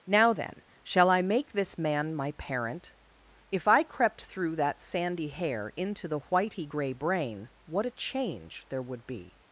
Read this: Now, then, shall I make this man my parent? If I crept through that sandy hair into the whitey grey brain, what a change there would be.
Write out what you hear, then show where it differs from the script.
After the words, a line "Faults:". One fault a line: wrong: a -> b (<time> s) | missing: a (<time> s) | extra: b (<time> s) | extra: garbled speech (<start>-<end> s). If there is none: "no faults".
Now, then, shall I make this man my parent? If I crept through that sandy hair into the whitey grey brain, what a change there would be.
Faults:
no faults